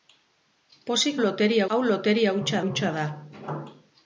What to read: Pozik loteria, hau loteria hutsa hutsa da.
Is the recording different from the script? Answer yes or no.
no